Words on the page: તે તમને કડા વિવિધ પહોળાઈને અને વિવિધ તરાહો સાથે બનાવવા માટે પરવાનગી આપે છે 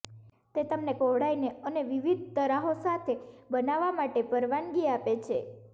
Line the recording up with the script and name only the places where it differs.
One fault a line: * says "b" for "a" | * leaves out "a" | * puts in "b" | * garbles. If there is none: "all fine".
* leaves out "કડા વિવિધ"